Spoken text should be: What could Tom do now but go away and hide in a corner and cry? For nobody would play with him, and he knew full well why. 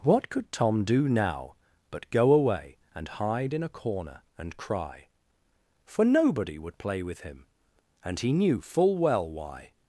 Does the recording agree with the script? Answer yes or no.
yes